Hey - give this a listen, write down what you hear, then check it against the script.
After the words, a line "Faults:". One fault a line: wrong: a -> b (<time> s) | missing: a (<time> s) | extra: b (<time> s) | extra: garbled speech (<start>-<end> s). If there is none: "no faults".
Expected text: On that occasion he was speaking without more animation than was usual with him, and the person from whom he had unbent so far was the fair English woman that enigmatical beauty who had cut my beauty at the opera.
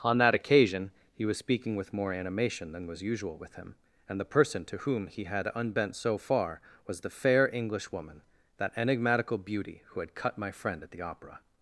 On that occasion he was speaking with more animation than was usual with him, and the person to whom he had unbent so far was the fair English woman that enigmatical beauty who had cut my friend at the opera.
Faults:
wrong: without -> with (1.8 s)
wrong: from -> to (4.7 s)
wrong: beauty -> friend (10.5 s)